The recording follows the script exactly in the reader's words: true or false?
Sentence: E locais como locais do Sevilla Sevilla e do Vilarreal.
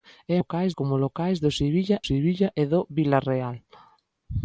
true